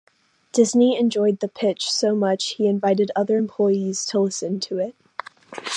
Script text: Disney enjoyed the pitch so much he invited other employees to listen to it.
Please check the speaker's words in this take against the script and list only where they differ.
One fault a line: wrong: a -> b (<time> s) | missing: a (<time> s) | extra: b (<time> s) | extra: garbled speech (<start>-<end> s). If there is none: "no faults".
no faults